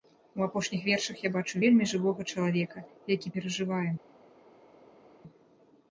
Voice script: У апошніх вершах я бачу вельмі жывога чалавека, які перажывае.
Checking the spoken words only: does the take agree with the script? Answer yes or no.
yes